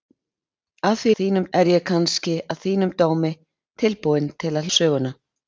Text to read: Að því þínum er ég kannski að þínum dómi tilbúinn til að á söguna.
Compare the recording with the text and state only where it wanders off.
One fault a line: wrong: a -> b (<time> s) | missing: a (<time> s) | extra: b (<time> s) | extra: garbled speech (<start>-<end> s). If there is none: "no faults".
no faults